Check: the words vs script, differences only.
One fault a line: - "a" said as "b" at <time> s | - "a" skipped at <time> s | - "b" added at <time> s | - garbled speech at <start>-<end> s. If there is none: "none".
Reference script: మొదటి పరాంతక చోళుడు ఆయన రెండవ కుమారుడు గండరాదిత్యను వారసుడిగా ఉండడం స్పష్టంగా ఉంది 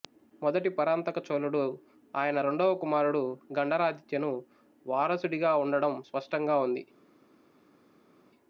none